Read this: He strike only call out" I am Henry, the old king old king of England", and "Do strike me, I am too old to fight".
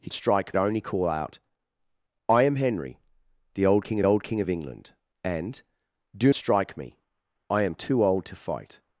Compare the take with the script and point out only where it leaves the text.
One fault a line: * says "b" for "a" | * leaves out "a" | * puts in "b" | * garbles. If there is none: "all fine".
all fine